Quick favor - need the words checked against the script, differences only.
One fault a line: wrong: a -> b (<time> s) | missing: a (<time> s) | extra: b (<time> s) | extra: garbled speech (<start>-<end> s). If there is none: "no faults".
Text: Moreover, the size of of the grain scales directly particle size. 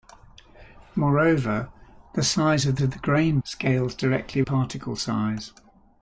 no faults